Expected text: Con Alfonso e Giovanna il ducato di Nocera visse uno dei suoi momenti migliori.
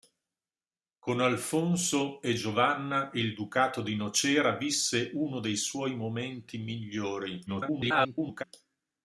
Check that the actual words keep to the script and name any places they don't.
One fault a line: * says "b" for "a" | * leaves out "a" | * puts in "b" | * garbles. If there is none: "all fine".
* garbles